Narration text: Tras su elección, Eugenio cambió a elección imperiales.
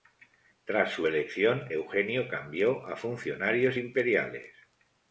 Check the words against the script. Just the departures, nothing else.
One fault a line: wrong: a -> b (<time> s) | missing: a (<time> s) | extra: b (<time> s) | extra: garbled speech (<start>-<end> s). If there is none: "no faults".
wrong: elección -> funcionarios (3.0 s)